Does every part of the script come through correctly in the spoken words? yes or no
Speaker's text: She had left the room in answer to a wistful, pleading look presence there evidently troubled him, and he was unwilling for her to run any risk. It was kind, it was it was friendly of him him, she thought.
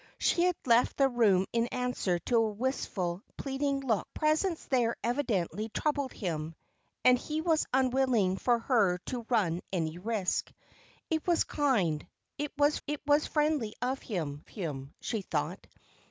yes